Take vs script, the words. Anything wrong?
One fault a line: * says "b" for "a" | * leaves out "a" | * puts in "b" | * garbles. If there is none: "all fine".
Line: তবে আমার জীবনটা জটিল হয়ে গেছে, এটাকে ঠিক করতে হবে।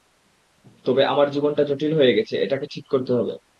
all fine